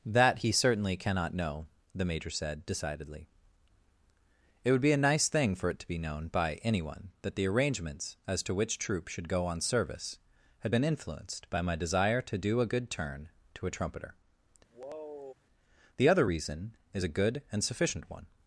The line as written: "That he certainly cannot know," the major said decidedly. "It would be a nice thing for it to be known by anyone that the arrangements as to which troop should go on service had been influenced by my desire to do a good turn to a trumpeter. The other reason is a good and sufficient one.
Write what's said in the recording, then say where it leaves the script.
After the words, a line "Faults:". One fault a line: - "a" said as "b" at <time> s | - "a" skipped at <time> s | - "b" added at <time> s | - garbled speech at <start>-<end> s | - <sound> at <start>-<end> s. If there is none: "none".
"That he certainly cannot know," the major said decidedly. "It would be a nice thing for it to be known by anyone that the arrangements as to which troop should go on service had been influenced by my desire to do a good turn to a trumpeter. The other reason is a good and sufficient one.
Faults:
- sigh at 14.7-15.3 s